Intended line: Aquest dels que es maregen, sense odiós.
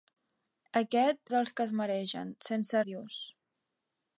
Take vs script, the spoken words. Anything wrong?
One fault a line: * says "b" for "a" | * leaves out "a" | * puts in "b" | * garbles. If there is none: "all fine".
all fine